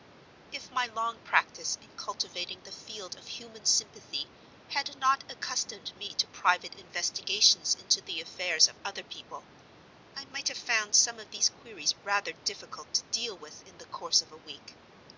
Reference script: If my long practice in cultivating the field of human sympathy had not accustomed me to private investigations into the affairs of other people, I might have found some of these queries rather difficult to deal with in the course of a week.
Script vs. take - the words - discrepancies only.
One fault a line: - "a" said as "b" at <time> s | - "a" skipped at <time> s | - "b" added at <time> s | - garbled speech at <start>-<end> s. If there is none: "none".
none